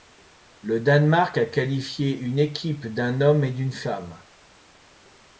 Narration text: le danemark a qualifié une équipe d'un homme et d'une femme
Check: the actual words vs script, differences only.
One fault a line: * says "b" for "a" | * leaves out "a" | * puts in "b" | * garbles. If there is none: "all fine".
all fine